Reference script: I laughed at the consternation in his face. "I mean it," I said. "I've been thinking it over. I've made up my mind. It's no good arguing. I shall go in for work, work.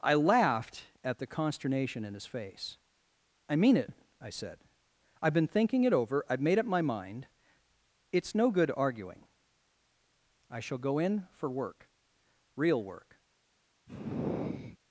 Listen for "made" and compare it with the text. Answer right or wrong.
right